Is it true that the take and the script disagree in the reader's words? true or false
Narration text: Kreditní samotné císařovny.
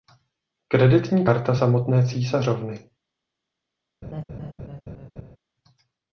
true